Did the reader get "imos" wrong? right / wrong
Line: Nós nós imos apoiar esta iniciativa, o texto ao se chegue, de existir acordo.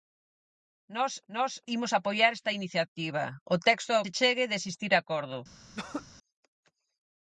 right